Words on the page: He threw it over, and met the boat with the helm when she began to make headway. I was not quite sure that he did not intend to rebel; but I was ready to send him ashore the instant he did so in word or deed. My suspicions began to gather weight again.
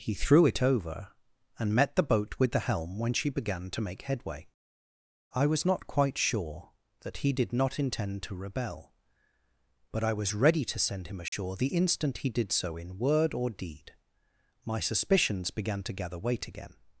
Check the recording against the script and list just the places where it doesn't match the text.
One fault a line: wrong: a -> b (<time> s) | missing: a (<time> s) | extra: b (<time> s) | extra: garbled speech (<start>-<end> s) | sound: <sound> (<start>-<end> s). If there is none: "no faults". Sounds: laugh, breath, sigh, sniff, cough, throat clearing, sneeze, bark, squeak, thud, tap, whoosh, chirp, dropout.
sound: dropout (11.3-11.3 s)